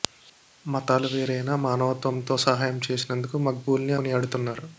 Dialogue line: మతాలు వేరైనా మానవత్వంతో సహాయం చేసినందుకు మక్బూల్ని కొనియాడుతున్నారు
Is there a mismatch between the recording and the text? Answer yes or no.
no